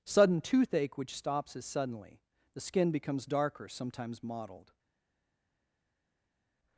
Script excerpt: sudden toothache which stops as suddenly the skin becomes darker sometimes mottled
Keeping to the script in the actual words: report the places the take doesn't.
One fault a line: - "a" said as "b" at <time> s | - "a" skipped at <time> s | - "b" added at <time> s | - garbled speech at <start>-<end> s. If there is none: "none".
none